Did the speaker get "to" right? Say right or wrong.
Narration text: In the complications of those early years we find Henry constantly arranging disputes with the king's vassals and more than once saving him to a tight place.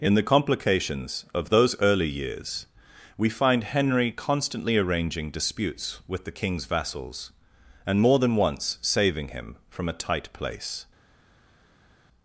wrong